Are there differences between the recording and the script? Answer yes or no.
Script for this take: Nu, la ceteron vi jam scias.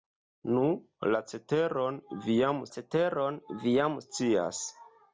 yes